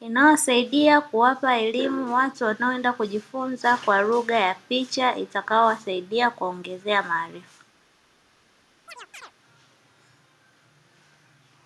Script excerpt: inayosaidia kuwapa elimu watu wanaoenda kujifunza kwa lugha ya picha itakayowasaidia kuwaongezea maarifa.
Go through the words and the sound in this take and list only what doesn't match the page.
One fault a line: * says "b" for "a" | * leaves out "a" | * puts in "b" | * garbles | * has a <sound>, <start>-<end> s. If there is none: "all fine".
* has a chirp, 8.9-9.3 s